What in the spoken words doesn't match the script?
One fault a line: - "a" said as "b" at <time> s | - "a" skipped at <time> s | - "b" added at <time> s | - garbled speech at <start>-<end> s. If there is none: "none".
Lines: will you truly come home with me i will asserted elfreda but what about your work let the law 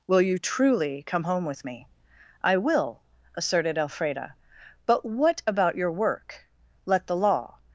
none